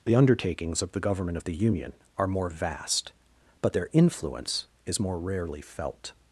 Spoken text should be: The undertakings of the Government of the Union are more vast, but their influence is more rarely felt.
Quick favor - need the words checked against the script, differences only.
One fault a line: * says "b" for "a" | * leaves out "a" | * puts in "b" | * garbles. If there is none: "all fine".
all fine